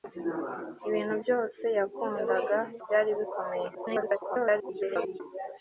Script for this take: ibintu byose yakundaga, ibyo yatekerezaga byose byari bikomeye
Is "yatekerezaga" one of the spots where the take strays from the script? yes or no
yes